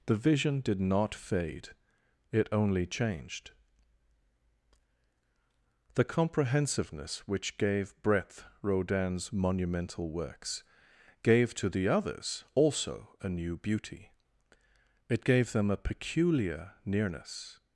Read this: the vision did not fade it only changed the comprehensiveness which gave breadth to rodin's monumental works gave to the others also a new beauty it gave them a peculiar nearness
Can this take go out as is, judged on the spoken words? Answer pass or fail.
fail